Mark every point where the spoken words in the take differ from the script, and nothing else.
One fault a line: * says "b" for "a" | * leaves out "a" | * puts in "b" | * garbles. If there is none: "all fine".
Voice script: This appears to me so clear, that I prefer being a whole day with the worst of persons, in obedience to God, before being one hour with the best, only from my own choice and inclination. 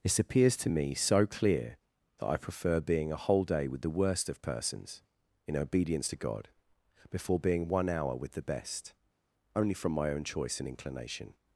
all fine